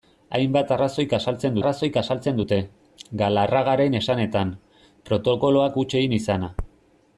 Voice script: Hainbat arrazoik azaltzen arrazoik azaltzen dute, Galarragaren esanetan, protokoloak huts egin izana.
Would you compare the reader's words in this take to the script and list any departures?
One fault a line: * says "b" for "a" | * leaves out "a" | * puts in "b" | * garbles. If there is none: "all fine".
all fine